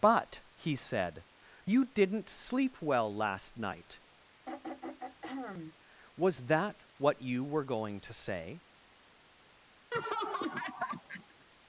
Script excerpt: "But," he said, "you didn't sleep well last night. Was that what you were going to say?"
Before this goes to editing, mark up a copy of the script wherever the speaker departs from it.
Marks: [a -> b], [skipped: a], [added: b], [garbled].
"But," he said, "you didn't sleep well last night. Was that what you were going to say?"